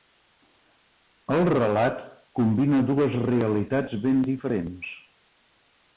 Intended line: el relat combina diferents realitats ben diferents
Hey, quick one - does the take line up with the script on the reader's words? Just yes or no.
no